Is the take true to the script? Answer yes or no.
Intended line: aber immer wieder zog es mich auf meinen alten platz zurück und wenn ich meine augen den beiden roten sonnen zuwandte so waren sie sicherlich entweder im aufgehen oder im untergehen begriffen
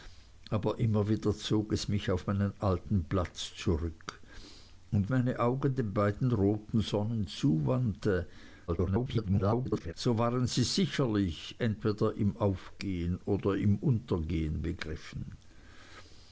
no